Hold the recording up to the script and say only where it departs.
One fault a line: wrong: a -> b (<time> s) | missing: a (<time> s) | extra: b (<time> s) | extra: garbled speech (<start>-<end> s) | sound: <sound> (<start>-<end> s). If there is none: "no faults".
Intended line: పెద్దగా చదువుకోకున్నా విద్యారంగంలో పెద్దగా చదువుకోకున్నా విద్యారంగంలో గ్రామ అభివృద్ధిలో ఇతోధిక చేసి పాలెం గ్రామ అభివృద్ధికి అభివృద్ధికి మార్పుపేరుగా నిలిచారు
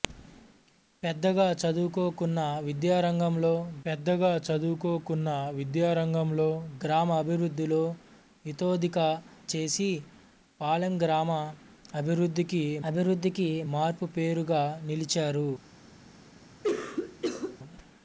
sound: cough (16.6-17.6 s)